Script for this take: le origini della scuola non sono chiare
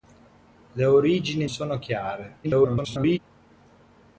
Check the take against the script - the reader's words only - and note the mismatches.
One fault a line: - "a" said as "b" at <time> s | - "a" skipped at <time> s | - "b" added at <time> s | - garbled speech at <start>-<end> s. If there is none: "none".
- "della scuola non" skipped at 1.5 s
- garbled speech at 2.4-3.2 s